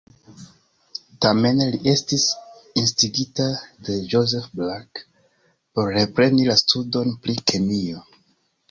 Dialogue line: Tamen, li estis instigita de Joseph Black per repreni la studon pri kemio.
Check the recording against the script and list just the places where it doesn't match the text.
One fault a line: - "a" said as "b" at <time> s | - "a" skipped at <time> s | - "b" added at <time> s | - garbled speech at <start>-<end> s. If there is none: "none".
- "per" said as "por" at 5.7 s